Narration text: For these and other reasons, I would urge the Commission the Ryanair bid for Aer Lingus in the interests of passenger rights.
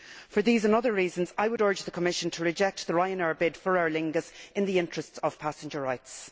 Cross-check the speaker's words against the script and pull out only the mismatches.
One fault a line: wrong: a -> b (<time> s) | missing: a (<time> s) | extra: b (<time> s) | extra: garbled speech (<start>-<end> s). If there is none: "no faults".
extra: to reject (2.3 s)